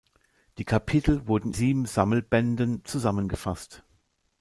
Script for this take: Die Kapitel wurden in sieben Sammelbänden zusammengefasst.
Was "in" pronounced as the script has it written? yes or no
no